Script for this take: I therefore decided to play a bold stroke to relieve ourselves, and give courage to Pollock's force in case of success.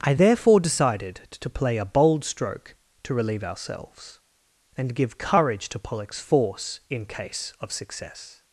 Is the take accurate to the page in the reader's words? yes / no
yes